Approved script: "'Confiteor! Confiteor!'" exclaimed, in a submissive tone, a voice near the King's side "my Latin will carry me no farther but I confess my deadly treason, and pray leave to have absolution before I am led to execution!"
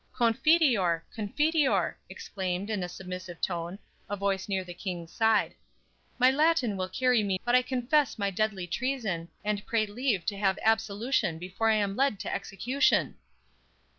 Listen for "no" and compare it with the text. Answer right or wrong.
wrong